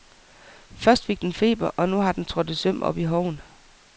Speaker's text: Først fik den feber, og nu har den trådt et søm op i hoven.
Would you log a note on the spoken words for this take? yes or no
no